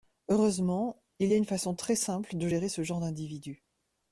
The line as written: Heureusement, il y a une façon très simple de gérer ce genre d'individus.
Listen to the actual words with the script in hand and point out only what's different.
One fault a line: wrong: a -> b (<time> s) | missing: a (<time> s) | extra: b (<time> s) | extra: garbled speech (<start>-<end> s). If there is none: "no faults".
no faults